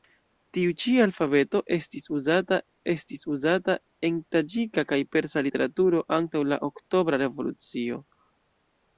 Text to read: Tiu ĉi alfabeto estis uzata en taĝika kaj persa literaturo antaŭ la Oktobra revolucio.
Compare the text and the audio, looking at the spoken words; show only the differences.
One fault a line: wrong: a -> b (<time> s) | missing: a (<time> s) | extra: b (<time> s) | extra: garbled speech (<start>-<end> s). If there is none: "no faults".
extra: estis uzata (2.9 s)